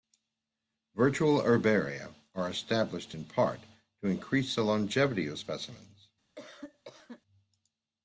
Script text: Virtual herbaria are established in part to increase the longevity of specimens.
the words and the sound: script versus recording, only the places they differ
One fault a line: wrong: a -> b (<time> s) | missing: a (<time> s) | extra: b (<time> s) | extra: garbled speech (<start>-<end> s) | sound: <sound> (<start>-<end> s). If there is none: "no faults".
sound: cough (6.4-7.2 s)